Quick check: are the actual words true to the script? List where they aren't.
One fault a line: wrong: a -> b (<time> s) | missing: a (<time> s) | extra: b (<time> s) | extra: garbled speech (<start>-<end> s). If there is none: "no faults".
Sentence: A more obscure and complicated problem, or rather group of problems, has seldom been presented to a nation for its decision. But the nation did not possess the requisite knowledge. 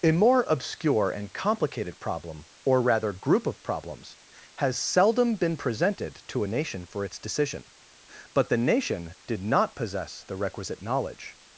no faults